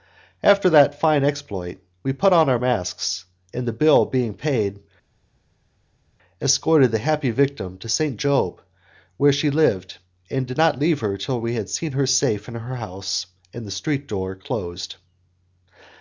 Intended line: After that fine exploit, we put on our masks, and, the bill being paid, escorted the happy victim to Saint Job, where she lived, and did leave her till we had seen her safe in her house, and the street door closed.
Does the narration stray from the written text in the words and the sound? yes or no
yes